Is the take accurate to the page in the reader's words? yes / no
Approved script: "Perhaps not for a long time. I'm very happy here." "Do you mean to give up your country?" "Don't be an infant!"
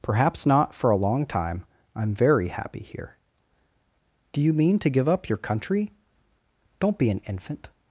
yes